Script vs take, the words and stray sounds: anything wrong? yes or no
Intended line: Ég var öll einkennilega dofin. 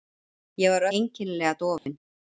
yes